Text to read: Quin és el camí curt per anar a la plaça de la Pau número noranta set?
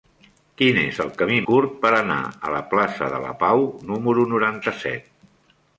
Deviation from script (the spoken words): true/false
false